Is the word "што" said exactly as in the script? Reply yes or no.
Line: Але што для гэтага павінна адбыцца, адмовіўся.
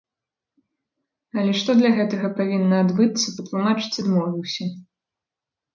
yes